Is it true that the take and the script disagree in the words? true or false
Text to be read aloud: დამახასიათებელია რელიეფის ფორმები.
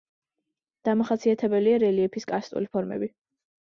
true